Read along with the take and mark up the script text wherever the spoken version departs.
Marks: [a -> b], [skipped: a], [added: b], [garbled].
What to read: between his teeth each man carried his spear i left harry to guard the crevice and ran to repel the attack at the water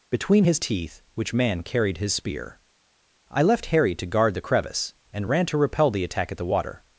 between his teeth [each -> which] man carried his spear i left harry to guard the crevice and ran to repel the attack at the water